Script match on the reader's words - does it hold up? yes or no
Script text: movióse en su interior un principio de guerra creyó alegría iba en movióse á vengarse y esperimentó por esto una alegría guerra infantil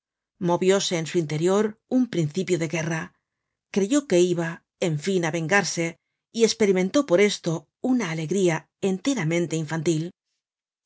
no